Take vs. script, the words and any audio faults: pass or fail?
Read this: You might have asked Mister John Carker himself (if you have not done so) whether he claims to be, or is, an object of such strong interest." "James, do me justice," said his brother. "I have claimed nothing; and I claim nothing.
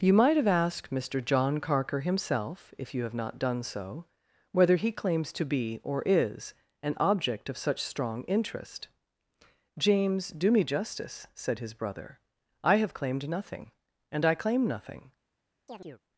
fail